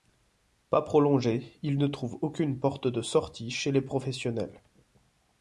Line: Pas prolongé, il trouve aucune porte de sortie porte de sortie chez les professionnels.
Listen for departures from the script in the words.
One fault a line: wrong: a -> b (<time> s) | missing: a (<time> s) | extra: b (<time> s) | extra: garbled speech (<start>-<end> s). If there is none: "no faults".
extra: ne (1.8 s)
missing: porte de sortie (3.5 s)